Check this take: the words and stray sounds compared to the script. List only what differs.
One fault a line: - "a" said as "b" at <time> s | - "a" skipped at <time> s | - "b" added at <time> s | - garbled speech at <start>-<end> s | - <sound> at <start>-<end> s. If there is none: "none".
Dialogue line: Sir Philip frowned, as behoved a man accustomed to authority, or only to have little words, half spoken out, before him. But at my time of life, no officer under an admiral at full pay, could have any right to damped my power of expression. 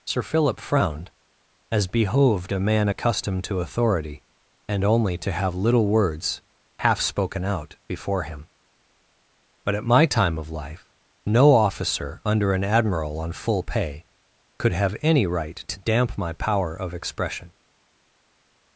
- "or" said as "and" at 4.7 s
- "at" said as "on" at 13.2 s
- "damped" said as "damp" at 15.8 s